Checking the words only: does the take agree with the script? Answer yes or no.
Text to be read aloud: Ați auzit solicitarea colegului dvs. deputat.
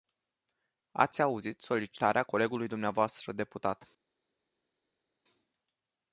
yes